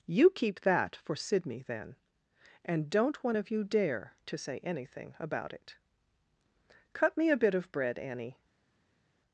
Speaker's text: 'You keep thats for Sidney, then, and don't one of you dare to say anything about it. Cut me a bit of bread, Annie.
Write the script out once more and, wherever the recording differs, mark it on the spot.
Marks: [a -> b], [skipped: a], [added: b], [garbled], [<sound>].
'You keep [thats -> that] for Sidney, then, and don't one of you dare to say anything about it. Cut me a bit of bread, Annie.